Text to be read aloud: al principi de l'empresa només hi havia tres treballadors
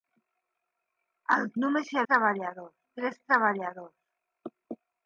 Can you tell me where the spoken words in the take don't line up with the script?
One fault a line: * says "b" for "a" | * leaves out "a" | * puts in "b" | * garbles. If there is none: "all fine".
* leaves out "principi de l'empresa"
* says "treballadors" for "havia"